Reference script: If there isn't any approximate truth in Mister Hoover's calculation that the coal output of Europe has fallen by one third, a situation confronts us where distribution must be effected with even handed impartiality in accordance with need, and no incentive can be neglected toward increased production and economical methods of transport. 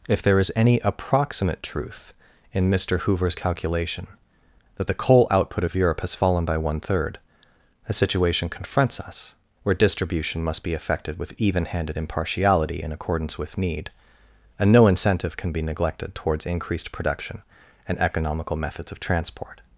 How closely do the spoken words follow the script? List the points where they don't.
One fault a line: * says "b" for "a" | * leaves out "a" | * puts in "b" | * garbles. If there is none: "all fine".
* says "is" for "isn't"
* says "towards" for "toward"